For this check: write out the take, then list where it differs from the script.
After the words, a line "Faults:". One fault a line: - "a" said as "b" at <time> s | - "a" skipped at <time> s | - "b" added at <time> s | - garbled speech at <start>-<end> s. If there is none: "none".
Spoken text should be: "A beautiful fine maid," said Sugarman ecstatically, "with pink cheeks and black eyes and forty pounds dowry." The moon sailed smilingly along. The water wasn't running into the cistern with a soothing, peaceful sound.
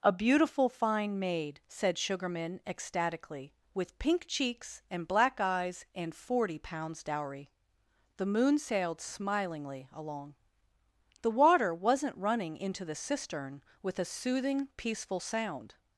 "A beautiful fine maid," said Sugarman ecstatically, "with pink cheeks and black eyes and forty pounds dowry." The moon sailed smilingly along. The water wasn't running into the cistern with a soothing, peaceful sound.
Faults:
none